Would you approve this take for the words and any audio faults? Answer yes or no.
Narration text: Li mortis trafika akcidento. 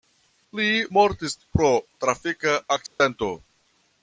no